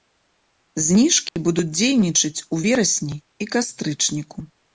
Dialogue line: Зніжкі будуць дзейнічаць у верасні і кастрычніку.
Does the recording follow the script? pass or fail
pass